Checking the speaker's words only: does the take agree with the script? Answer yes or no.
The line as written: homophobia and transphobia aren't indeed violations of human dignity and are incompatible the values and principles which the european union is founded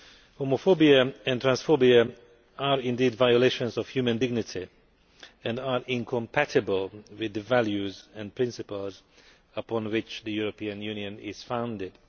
no